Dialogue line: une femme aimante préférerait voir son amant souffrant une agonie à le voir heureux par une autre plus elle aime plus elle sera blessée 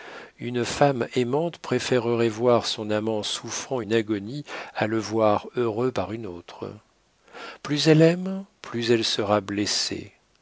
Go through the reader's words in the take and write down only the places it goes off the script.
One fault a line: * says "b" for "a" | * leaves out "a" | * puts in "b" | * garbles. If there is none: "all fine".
all fine